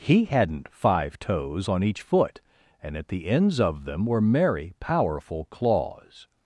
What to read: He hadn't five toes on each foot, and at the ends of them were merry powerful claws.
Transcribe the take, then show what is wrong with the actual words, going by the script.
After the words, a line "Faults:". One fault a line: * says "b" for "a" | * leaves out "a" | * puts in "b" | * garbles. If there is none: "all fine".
He hadn't five toes on each foot, and at the ends of them were merry powerful claws.
Faults:
all fine